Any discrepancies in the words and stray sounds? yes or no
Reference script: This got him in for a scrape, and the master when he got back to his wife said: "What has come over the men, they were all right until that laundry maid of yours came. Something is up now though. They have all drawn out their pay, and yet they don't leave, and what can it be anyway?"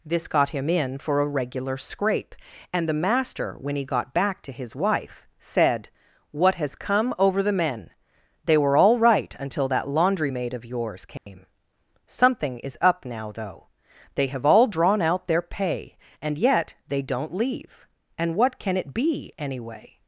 yes